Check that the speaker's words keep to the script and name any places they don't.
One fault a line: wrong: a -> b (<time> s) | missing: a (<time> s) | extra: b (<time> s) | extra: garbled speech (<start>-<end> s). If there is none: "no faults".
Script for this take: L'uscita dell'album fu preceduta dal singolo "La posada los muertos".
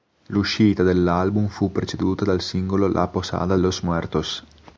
no faults